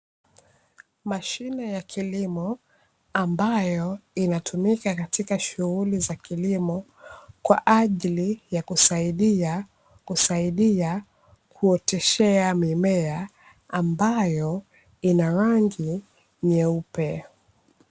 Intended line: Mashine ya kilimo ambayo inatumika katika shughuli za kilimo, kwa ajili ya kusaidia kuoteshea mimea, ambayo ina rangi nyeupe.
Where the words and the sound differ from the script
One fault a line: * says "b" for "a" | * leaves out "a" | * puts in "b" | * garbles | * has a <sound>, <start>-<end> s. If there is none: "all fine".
* puts in "kusaidia"